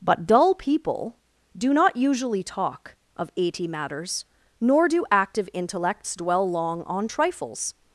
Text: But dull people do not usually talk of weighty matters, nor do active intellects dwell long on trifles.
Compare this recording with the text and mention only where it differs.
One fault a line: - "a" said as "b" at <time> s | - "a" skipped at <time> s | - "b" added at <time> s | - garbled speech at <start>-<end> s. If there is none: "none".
- "weighty" said as "eighty" at 3.4 s